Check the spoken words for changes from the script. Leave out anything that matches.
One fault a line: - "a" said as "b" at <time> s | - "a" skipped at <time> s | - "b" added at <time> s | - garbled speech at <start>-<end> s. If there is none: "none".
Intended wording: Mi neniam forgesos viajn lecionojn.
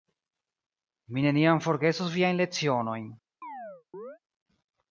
none